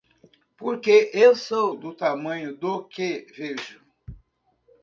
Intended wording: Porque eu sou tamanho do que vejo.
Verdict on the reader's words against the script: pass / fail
fail